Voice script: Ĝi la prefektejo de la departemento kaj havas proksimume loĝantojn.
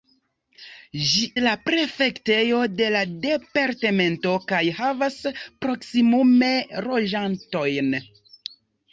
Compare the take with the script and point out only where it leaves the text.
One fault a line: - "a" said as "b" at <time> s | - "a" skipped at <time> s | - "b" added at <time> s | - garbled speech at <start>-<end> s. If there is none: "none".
none